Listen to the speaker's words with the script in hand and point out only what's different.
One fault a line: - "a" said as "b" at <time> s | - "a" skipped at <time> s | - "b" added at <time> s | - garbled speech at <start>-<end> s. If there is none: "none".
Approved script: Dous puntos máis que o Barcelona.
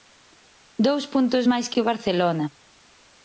none